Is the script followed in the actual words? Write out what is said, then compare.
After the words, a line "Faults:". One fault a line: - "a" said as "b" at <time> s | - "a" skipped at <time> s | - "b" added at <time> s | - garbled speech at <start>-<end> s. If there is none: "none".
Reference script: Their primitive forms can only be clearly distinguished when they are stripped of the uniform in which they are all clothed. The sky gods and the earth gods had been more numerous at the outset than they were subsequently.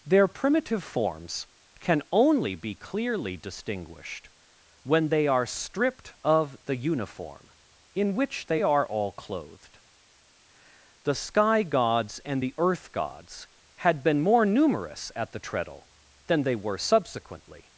Their primitive forms can only be clearly distinguished when they are stripped of the uniform in which they are all clothed. The sky gods and the earth gods had been more numerous at the treadle than they were subsequently.
Faults:
- "outset" said as "treadle" at 15.4 s